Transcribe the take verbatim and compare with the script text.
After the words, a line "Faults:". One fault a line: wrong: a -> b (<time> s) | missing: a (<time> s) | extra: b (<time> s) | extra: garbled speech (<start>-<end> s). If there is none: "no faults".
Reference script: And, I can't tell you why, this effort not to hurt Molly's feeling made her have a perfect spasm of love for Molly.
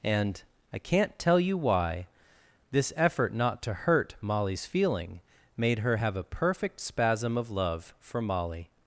And, I can't tell you why, this effort not to hurt Molly's feeling made her have a perfect spasm of love for Molly.
Faults:
no faults